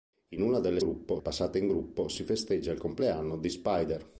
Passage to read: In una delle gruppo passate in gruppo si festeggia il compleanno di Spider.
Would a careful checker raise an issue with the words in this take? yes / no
no